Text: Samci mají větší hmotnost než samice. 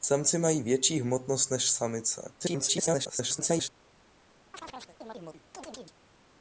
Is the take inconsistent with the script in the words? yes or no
yes